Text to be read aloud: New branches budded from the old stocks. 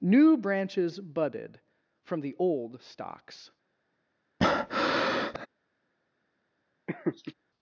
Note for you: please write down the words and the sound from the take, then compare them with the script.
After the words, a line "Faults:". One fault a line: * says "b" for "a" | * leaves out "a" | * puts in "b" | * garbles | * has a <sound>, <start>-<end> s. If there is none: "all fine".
New branches budded from the old stocks.
Faults:
* has a breath, 4.4-5.5 s
* has a laugh, 6.9-7.3 s